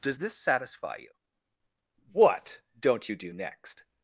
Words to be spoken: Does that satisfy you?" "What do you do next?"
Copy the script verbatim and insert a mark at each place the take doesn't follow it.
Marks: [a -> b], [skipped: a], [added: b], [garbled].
Does [that -> this] satisfy you?" "What [do -> don't] you do next?"